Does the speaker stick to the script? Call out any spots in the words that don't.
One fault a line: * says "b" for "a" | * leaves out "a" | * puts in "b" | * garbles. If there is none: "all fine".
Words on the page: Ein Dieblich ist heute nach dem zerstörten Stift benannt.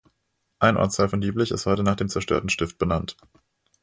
* puts in "Ortsteil von"